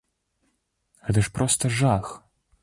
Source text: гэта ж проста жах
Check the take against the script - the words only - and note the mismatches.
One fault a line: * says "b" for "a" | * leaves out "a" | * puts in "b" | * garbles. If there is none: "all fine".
all fine